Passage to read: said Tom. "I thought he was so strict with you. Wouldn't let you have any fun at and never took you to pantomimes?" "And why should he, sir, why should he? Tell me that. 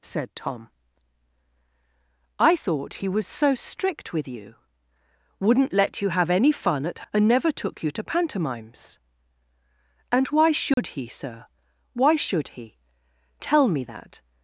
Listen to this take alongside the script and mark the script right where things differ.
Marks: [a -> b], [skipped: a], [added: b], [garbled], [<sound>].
said Tom. "I thought he was so strict with you. Wouldn't let you have any fun at and never took you to pantomimes?" "And why should [dropout] he, sir, why should he? Tell me that.